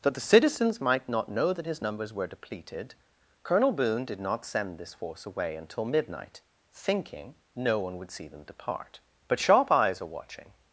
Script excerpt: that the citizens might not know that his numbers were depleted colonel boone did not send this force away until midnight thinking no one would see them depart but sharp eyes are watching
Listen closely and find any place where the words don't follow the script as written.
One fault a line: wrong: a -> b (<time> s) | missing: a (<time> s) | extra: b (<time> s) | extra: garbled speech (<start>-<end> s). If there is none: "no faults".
no faults